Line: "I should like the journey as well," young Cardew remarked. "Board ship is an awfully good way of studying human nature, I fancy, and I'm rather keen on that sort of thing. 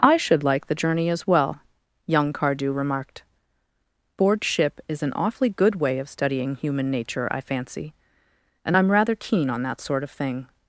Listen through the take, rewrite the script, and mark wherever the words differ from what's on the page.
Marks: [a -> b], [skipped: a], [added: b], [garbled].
"I should like the journey as well," young Cardew remarked. "Board ship is an awfully good way of studying human nature, I fancy, and I'm rather keen on that sort of thing.